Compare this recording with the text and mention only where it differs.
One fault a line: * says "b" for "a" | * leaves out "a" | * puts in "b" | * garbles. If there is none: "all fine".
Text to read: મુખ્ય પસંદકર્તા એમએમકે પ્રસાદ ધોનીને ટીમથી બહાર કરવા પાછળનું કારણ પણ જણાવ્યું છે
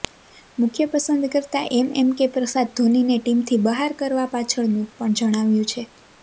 * leaves out "કારણ"